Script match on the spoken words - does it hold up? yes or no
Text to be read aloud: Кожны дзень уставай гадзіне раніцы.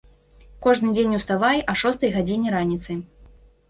no